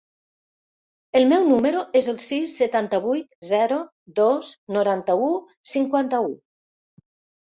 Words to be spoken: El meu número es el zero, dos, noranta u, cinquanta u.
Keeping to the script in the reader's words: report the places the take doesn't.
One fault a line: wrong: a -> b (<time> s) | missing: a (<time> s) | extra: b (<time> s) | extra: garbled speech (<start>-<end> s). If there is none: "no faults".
extra: sis setanta vuit (2.2 s)